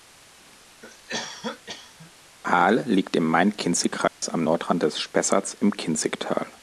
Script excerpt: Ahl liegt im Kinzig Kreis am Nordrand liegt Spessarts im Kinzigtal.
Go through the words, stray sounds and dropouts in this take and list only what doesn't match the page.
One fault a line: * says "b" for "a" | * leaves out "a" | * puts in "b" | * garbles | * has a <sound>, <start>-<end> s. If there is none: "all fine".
* has a cough, 0.8-2.1 s
* puts in "Main"
* has a dropout, 4.1-4.2 s
* says "des" for "liegt"